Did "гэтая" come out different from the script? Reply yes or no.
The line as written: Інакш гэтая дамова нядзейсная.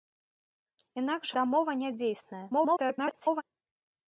yes